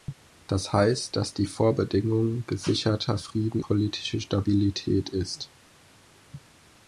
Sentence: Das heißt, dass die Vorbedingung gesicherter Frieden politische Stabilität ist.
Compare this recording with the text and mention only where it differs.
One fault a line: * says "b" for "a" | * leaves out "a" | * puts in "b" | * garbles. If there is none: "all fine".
all fine